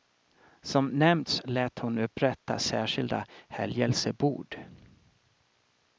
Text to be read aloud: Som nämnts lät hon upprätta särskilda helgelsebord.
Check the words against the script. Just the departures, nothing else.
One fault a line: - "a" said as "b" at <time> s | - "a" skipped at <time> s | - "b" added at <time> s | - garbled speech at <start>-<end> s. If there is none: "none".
none